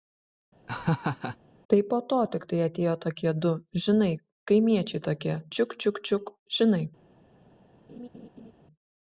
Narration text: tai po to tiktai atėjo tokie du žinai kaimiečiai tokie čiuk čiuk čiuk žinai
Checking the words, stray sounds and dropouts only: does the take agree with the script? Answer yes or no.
no